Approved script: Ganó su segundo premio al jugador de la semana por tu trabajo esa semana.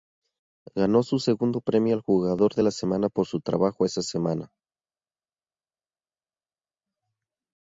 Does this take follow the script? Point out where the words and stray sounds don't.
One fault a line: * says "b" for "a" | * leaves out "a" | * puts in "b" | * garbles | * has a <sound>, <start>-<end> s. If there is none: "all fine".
* says "su" for "tu"